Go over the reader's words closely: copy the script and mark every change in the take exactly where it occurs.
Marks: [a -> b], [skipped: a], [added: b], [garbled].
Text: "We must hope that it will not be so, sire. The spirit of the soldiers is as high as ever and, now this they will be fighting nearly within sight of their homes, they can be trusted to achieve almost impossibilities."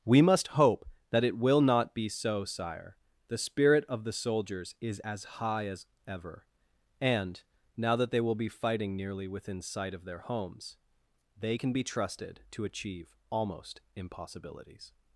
"We must hope that it will not be so, sire. The spirit of the soldiers is as high as ever and, now [this -> that] they will be fighting nearly within sight of their homes, they can be trusted to achieve almost impossibilities."